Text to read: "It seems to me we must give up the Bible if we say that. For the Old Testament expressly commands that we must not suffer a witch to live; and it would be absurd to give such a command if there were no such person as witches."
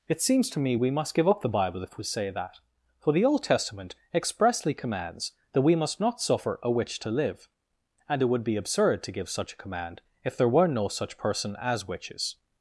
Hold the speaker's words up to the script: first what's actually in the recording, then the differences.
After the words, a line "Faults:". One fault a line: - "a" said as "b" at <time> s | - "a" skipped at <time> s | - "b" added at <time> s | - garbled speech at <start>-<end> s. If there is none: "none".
"It seems to me we must give up the Bible if we say that. For the Old Testament expressly commands that we must not suffer a witch to live; and it would be absurd to give such a command if there were no such person as witches."
Faults:
none